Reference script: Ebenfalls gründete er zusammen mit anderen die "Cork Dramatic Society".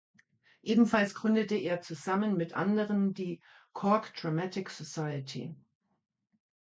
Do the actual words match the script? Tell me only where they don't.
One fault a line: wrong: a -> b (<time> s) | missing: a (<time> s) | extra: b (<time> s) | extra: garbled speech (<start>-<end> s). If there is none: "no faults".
no faults